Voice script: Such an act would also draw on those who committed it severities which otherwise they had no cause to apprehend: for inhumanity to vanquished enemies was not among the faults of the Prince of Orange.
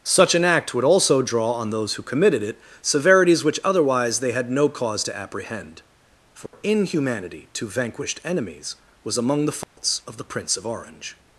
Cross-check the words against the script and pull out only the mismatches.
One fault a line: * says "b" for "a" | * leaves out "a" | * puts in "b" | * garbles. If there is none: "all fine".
* leaves out "not"